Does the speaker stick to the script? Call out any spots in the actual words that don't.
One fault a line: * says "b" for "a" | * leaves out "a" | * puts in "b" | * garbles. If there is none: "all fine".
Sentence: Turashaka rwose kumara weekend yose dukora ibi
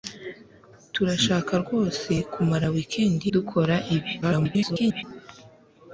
* leaves out "yose"
* garbles